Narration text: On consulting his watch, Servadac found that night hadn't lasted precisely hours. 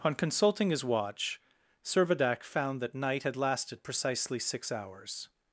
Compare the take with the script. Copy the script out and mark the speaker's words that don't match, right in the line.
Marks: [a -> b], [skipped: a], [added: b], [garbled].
On consulting his watch, Servadac found that night [hadn't -> had] lasted precisely [added: six] hours.